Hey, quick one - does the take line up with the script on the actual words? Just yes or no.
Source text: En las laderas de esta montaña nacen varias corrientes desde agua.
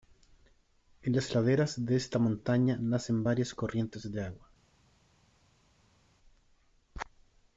no